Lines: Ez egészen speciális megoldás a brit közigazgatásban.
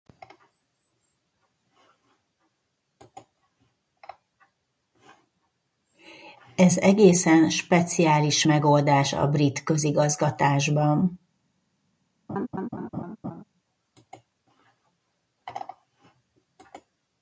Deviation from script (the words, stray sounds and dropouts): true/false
true